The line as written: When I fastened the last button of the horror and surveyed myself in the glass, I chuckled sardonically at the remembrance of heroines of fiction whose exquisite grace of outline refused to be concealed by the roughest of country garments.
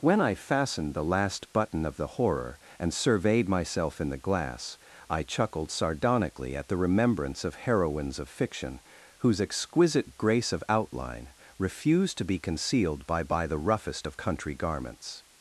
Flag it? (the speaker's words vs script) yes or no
yes